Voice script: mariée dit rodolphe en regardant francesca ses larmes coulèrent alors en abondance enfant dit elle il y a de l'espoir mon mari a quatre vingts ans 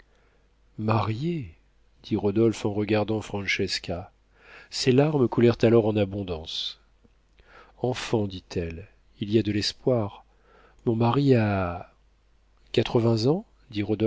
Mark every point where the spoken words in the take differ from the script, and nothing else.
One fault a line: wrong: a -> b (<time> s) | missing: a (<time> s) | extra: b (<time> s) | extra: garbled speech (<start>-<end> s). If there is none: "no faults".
no faults